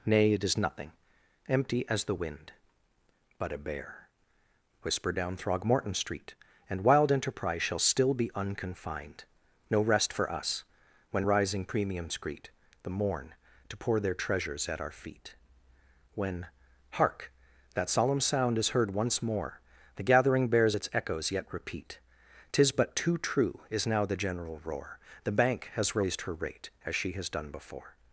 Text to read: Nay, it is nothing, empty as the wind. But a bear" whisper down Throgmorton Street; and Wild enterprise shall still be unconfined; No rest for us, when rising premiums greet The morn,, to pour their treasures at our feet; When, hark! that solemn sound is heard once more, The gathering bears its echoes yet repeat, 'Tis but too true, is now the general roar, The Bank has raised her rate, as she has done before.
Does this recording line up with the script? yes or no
yes